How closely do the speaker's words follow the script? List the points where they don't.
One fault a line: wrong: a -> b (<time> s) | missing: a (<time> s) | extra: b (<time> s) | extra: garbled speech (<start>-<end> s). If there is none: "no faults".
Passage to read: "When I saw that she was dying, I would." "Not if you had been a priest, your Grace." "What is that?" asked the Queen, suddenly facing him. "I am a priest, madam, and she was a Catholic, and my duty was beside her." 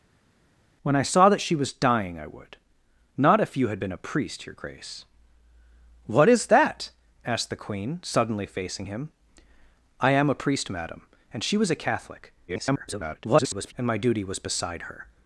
extra: garbled speech (12.5-13.7 s)